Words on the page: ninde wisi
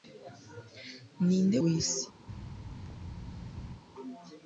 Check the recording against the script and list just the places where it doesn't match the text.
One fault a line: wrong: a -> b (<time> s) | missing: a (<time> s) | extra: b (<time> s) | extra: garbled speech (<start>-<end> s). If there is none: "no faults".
no faults